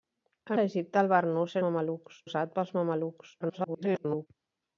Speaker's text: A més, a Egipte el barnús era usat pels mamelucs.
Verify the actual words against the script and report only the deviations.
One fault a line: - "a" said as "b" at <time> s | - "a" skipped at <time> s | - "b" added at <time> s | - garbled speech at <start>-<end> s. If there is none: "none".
- "més" skipped at 0.6 s
- "era" said as "mamelucs" at 1.7 s
- garbled speech at 3.4-4.3 s